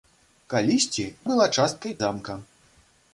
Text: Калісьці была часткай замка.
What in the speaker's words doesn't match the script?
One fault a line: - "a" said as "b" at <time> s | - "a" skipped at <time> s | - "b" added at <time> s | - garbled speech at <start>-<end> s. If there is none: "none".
none